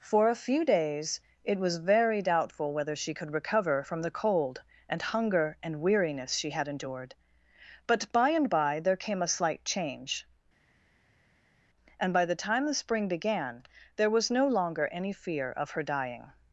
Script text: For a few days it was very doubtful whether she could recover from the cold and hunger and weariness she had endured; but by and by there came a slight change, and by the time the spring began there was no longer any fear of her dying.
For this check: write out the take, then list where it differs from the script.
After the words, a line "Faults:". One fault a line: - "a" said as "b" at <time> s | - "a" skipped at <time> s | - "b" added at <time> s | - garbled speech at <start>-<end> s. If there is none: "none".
For a few days it was very doubtful whether she could recover from the cold and hunger and weariness she had endured; but by and by there came a slight change, and by the time the spring began there was no longer any fear of her dying.
Faults:
none